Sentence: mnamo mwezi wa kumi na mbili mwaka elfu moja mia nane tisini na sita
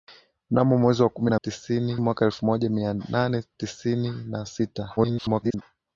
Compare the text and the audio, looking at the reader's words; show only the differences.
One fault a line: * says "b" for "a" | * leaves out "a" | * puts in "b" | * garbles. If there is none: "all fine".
* says "tisini" for "mbili"
* garbles